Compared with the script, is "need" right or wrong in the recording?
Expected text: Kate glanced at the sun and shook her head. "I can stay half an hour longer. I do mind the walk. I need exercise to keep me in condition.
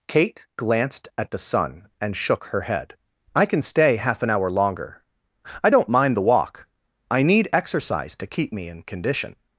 right